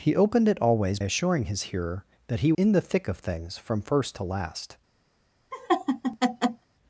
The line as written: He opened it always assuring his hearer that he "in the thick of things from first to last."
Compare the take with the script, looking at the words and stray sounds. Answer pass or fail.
fail